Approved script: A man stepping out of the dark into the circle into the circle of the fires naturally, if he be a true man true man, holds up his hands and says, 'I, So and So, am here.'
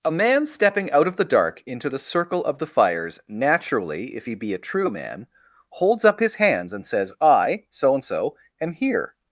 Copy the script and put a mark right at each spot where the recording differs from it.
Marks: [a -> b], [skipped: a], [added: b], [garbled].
A man stepping out of the dark into the circle [skipped: into the circle] of the fires naturally, if he be a true man [skipped: true man,] holds up his hands and says, 'I, So and So, am here.'